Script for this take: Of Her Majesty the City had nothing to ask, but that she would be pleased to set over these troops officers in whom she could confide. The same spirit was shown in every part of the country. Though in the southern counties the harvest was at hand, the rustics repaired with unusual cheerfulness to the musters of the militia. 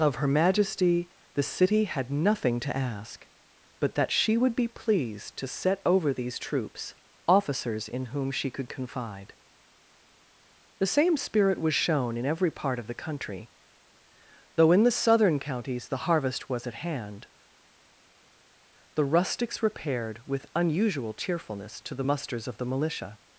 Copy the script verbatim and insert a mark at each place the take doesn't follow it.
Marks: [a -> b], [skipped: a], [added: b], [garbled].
Of Her Majesty the City had nothing to ask, but that she would be pleased to set over these troops officers in whom she could confide. The same spirit was shown in every part of the country. Though in the southern counties the harvest was at hand, the rustics repaired with unusual cheerfulness to the musters of the militia.